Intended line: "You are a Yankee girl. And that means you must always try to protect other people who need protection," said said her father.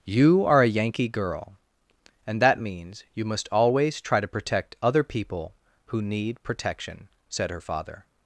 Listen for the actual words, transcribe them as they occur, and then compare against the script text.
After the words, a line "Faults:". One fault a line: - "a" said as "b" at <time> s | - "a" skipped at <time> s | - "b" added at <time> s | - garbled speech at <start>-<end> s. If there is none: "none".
"You are a Yankee girl. And that means you must always try to protect other people who need protection," said her father.
Faults:
- "said" skipped at 7.5 s